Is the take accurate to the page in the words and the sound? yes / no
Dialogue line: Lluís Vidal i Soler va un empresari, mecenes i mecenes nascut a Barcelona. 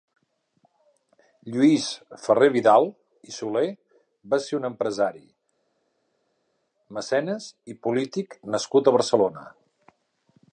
no